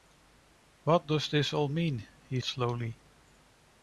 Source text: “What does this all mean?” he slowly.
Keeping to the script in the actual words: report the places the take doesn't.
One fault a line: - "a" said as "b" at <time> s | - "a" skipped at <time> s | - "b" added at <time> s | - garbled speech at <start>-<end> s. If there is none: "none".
none